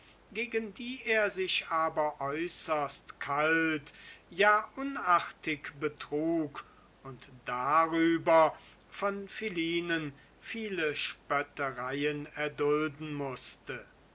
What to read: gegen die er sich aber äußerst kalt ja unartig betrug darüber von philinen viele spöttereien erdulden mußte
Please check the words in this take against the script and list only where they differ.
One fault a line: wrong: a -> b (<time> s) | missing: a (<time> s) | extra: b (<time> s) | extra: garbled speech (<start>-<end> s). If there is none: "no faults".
extra: und (7.0 s)